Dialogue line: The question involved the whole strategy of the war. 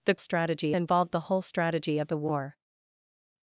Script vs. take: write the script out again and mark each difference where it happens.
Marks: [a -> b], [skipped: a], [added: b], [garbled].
The [question -> strategy] involved the whole strategy of the war.